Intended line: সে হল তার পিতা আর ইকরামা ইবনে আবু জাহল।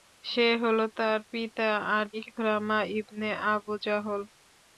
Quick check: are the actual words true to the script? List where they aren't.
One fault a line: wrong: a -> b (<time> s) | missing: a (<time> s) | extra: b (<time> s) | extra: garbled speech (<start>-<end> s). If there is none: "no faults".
no faults